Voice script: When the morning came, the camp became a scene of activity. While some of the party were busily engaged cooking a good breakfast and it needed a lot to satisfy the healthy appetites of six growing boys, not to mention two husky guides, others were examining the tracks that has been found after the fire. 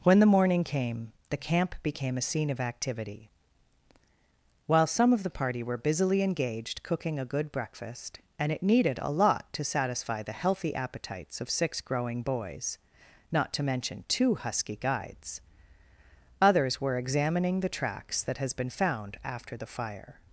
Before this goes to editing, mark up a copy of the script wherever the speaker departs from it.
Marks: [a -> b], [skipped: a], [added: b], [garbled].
When the morning came, the camp became a scene of activity. While some of the party were busily engaged cooking a good breakfast and it needed a lot to satisfy the healthy appetites of six growing boys, not to mention two husky guides, others were examining the tracks that has been found after the fire.